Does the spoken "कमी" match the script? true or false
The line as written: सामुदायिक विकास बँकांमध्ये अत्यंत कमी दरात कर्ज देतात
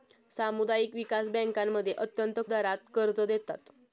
false